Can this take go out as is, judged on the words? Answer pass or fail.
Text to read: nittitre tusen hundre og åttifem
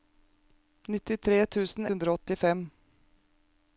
pass